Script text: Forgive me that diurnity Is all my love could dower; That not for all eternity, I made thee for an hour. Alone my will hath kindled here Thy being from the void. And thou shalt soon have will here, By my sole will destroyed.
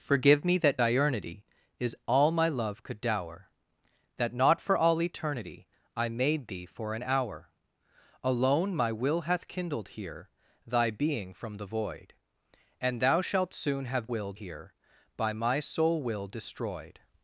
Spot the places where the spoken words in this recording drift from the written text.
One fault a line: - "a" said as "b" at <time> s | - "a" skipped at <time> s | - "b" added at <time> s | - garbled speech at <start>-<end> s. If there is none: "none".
none